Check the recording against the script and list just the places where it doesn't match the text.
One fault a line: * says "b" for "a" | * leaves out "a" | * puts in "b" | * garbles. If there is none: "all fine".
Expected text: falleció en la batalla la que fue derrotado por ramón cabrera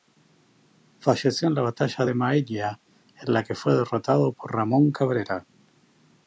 * puts in "de maella en"